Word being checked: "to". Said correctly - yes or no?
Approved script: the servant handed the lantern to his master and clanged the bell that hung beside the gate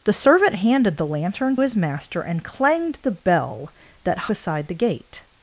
no